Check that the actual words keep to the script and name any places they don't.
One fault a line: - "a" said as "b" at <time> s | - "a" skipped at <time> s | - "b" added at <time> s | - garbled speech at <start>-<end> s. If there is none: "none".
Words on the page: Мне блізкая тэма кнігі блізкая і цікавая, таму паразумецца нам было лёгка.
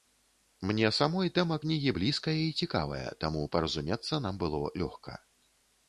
- "блізкая" said as "самой" at 1.0 s